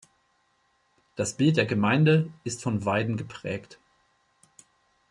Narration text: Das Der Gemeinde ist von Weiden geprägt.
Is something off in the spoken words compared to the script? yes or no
yes